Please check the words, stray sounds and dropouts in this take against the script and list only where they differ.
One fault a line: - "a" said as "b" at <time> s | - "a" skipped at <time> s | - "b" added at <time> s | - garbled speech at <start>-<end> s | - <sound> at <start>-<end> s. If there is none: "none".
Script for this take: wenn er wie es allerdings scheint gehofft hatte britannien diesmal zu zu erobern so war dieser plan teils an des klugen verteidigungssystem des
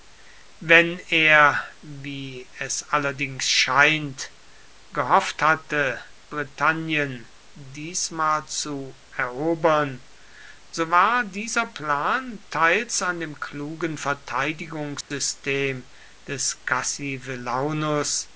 - "zu" skipped at 9.0 s
- "des" said as "dem" at 13.2 s
- dropout at 15.0-15.1 s